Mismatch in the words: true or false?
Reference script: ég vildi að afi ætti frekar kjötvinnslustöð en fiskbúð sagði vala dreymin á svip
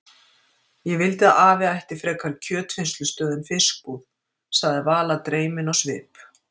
false